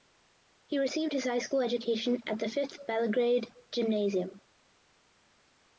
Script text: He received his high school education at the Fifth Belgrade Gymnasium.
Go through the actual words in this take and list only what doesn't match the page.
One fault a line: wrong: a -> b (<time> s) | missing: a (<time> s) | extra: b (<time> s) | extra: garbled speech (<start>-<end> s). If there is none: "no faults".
no faults